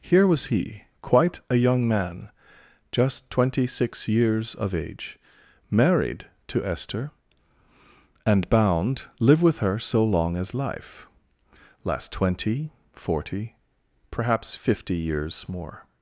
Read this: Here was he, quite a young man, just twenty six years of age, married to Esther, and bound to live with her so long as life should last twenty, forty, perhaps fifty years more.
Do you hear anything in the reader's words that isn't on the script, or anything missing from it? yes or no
yes